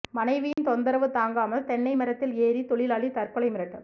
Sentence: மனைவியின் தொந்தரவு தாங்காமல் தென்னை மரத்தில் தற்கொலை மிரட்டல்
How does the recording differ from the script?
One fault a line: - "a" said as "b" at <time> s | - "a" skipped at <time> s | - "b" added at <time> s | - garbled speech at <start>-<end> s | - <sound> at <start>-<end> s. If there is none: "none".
- dropout at 0.5-0.6 s
- "ஏறி தொழிலாளி" added at 2.4 s